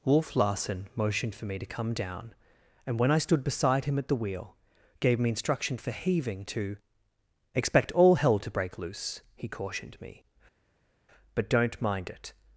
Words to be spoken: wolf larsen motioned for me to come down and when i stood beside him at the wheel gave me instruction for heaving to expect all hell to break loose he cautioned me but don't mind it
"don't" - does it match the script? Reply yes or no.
yes